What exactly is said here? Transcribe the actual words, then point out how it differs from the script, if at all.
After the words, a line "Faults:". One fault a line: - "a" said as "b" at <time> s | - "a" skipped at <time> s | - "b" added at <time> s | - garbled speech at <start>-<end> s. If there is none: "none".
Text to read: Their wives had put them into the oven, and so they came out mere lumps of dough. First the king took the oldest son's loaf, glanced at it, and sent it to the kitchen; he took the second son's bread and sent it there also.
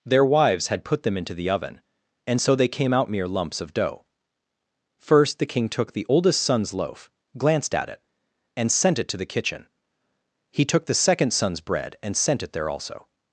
Their wives had put them into the oven, and so they came out mere lumps of dough. First the king took the oldest son's loaf, glanced at it, and sent it to the kitchen; he took the second son's bread and sent it there also.
Faults:
none